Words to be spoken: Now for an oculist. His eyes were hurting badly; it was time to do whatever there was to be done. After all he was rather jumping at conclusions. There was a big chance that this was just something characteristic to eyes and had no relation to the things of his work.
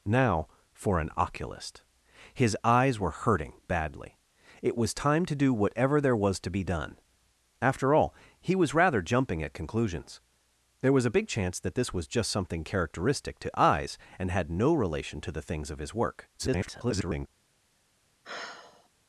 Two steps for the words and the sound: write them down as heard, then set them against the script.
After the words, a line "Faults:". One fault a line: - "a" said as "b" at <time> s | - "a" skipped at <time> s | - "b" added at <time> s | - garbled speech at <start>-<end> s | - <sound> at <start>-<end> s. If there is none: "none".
Now for an oculist. His eyes were hurting badly; it was time to do whatever there was to be done. After all he was rather jumping at conclusions. There was a big chance that this was just something characteristic to eyes and had no relation to the things of his work. [garbled]
Faults:
- garbled speech at 16.4-17.3 s
- sigh at 18.2-18.9 s